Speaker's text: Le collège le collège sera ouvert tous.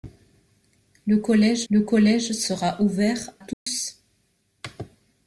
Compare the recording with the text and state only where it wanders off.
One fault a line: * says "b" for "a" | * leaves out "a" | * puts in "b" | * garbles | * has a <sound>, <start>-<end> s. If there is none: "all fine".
* has a dropout, 3.5-3.7 s